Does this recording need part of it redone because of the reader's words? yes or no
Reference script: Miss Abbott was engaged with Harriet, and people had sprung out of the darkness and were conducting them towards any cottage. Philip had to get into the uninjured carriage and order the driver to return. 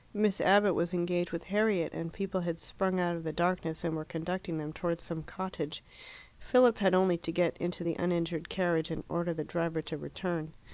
yes